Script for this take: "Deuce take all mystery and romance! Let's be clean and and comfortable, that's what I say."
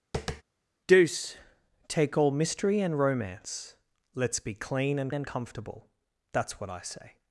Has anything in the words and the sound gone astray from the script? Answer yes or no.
yes